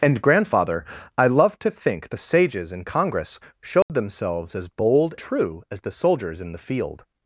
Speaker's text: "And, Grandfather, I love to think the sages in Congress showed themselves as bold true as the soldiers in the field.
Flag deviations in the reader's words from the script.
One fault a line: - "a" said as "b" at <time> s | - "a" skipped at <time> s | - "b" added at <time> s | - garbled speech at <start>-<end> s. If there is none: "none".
none